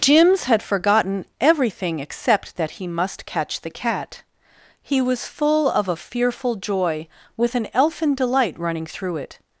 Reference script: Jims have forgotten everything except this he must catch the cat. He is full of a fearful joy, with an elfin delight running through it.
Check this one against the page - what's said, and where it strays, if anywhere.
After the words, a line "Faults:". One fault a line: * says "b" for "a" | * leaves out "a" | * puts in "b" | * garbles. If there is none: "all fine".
Jims had forgotten everything except that he must catch the cat. He was full of a fearful joy, with an elfin delight running through it.
Faults:
* says "had" for "have"
* says "that" for "this"
* says "was" for "is"